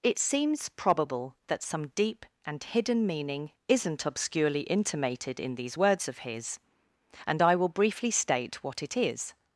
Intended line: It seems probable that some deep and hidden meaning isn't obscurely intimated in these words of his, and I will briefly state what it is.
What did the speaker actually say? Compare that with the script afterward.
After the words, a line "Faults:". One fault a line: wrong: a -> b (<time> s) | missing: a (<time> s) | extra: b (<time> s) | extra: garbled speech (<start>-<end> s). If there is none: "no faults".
It seems probable that some deep and hidden meaning isn't obscurely intimated in these words of his, and I will briefly state what it is.
Faults:
no faults